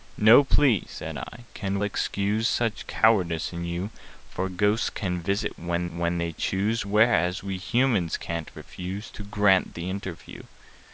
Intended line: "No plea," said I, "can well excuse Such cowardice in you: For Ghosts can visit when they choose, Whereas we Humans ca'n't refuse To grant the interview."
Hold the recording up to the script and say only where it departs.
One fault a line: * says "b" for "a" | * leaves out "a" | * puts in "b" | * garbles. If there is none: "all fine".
* leaves out "well"
* puts in "when"